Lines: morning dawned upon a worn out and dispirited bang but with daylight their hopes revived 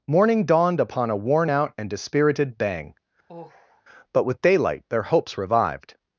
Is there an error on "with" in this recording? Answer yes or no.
no